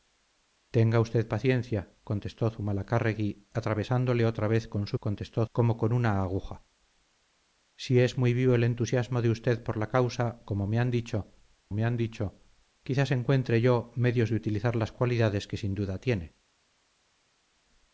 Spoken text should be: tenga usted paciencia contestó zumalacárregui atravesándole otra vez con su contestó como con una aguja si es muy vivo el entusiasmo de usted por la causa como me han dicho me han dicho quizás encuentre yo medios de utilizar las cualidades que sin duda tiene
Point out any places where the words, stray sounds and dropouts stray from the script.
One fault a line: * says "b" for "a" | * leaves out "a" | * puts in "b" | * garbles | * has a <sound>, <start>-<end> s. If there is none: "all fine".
all fine